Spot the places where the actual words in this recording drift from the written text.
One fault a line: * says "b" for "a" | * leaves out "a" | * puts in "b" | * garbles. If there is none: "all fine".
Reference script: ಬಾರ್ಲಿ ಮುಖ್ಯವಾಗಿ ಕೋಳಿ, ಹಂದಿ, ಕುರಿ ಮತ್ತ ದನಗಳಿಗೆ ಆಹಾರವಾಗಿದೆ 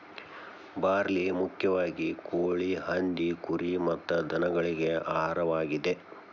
all fine